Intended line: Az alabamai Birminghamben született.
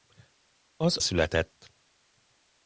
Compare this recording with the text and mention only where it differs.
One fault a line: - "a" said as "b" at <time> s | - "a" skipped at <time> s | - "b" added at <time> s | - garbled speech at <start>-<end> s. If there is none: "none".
- "alabamai Birminghamben" skipped at 1.0 s